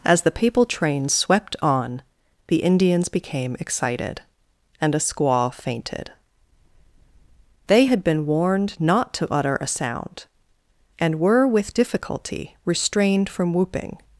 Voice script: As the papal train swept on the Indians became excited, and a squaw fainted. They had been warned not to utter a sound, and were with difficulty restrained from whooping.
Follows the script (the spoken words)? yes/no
yes